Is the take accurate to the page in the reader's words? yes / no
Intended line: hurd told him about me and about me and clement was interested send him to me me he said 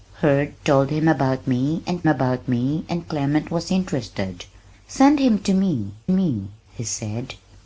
yes